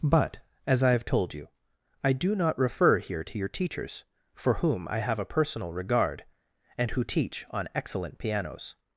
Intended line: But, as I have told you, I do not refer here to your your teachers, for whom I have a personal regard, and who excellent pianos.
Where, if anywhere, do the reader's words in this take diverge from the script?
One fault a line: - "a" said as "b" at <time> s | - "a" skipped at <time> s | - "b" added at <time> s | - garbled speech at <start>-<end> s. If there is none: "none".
- "your" skipped at 3.5 s
- "teach on" added at 7.0 s